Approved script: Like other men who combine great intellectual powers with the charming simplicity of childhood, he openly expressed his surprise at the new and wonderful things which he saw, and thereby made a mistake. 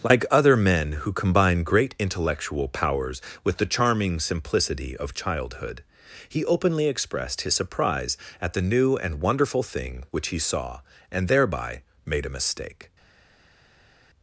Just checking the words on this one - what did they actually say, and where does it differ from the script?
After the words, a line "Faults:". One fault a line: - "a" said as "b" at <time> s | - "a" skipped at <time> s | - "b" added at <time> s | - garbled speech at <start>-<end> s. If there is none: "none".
Like other men who combine great intellectual powers with the charming simplicity of childhood, he openly expressed his surprise at the new and wonderful thing which he saw, and thereby made a mistake.
Faults:
- "things" said as "thing" at 9.6 s